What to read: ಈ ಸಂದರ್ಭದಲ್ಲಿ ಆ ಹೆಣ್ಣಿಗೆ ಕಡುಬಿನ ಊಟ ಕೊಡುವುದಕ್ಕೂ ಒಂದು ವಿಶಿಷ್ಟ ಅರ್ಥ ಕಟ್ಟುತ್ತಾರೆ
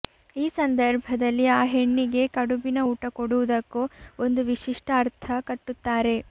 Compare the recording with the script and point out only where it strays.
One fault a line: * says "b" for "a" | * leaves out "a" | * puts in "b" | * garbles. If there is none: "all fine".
all fine